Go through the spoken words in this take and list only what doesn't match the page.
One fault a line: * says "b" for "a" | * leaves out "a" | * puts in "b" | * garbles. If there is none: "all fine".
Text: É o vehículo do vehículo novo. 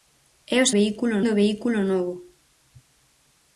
all fine